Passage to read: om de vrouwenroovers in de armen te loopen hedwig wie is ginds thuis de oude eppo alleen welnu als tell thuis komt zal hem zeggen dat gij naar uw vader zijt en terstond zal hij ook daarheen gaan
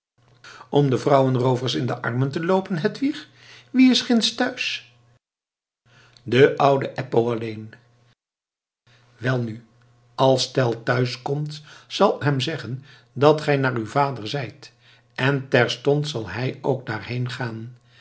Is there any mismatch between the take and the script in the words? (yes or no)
no